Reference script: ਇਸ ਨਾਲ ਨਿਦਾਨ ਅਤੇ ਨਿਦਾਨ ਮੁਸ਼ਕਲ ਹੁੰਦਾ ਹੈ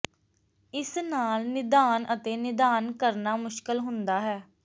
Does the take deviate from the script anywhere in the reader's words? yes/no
yes